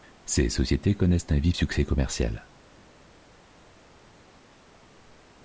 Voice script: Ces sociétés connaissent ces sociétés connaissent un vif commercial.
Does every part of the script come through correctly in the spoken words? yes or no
no